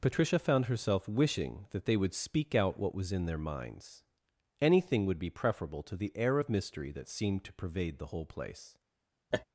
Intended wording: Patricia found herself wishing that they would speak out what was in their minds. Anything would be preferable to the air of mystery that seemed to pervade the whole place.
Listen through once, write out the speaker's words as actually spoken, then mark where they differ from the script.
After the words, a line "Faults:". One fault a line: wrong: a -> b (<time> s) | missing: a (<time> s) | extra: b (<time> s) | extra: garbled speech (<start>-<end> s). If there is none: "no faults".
Patricia found herself wishing that they would speak out what was in their minds. Anything would be preferable to the air of mystery that seemed to pervade the whole place.
Faults:
no faults